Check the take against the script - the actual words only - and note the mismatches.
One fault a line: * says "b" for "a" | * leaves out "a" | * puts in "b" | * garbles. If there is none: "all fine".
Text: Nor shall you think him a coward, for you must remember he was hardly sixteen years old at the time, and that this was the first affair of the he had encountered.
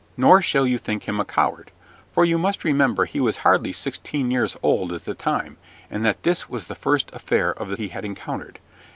all fine